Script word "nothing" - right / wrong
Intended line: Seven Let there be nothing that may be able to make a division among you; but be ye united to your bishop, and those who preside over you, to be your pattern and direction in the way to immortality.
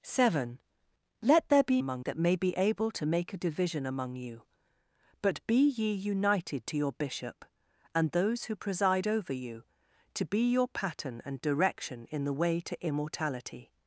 wrong